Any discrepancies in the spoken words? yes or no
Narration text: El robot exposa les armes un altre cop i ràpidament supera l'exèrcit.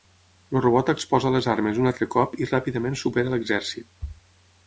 no